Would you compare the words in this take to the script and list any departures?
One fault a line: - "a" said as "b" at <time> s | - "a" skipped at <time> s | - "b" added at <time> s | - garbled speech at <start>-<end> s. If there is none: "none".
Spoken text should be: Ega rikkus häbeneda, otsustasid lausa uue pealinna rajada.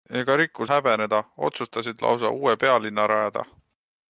none